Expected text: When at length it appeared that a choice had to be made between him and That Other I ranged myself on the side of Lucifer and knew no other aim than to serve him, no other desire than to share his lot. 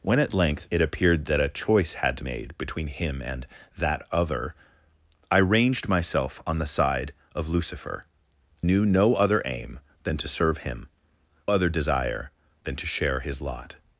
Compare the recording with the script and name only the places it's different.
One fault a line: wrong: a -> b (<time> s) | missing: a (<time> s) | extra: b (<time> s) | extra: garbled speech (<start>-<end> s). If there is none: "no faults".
missing: be (2.2 s)
missing: and (8.0 s)
missing: no (10.9 s)